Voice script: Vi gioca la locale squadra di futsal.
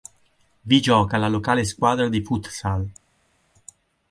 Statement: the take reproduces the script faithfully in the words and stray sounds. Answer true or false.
true